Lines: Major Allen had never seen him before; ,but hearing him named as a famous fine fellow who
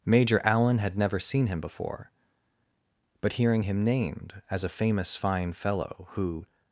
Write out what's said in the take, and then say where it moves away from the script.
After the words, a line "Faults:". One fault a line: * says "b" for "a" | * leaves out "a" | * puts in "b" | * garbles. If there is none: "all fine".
Major Allen had never seen him before; ,but hearing him named as a famous fine fellow who
Faults:
all fine